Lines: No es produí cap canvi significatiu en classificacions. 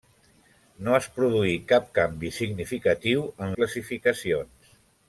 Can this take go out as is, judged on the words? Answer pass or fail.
pass